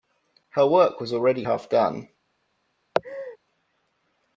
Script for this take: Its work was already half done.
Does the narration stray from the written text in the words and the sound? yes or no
yes